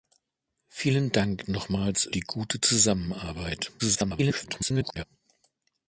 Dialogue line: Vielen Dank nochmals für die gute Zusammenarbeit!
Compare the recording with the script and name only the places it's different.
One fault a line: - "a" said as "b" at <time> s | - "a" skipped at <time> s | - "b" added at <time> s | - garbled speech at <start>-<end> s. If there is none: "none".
- "für" skipped at 2.1 s
- garbled speech at 3.8-5.0 s